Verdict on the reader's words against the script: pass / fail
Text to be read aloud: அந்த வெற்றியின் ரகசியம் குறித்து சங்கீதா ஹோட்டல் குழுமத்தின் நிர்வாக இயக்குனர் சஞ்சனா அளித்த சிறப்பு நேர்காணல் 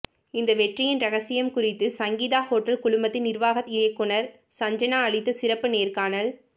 fail